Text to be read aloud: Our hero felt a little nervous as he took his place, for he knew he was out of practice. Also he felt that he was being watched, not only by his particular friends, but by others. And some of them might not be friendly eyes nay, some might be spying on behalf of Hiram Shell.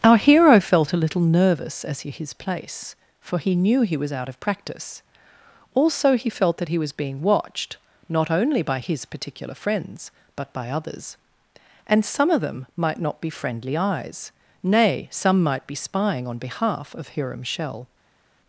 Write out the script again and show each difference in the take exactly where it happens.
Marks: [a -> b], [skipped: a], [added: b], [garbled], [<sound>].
Our hero felt a little nervous as he [skipped: took] his place, for he knew he was out of practice. Also he felt that he was being watched, not only by his particular friends, but by others. And some of them might not be friendly eyes nay, some might be spying on behalf of Hiram Shell.